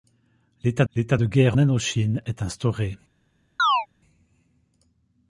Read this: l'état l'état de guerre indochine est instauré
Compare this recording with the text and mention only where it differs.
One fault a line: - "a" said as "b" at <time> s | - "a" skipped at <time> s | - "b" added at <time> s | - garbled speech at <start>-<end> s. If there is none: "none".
none